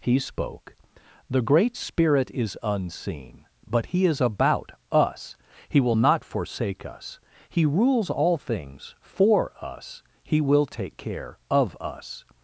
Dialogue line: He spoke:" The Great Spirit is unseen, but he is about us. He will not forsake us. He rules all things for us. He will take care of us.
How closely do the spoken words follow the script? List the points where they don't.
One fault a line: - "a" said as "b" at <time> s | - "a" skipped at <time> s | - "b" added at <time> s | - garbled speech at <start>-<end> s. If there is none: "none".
none